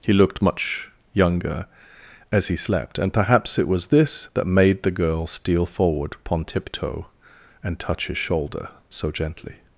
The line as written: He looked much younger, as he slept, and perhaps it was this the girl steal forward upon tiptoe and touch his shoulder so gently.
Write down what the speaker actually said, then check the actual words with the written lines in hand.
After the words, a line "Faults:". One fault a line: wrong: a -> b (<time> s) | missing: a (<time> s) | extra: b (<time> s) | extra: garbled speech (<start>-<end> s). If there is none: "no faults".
He looked much younger, as he slept, and perhaps it was this that made the girl steal forward upon tiptoe and touch his shoulder so gently.
Faults:
extra: that made (4.3 s)